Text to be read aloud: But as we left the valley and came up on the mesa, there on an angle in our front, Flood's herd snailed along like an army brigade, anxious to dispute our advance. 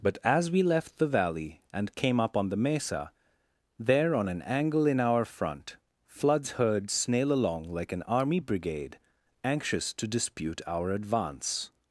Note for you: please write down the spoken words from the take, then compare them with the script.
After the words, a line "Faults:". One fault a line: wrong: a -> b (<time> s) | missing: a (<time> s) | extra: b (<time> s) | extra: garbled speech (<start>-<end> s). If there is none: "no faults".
But as we left the valley and came up on the mesa, there on an angle in our front, Flood's herd snail along like an army brigade, anxious to dispute our advance.
Faults:
wrong: snailed -> snail (6.9 s)